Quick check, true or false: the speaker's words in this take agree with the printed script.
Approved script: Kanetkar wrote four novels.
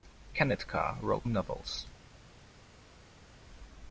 false